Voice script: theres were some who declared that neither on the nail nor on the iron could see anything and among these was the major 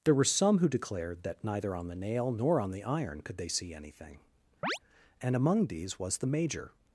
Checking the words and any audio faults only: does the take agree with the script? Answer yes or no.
no